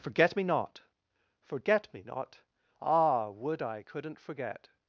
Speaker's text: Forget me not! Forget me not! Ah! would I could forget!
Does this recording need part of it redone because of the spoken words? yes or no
yes